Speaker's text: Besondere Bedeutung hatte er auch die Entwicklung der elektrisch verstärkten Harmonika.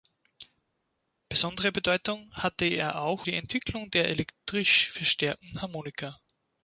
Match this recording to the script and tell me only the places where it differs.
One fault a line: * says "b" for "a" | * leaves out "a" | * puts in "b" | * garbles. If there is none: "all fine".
all fine